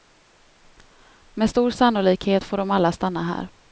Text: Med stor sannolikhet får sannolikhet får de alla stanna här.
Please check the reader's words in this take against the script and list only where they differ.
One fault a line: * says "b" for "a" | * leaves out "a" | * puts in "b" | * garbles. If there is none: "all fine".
* leaves out "sannolikhet får"